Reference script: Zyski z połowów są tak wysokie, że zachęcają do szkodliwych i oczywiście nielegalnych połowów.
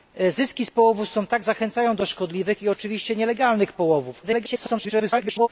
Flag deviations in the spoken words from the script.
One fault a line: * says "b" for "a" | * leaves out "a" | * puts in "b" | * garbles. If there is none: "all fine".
* leaves out "wysokie że"
* garbles